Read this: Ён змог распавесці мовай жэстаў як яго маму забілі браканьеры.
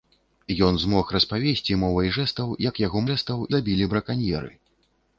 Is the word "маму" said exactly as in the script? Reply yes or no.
no